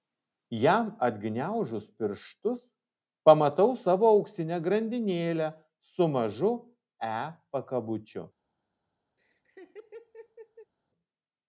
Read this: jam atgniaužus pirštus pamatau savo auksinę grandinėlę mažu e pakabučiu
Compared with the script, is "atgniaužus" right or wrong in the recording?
right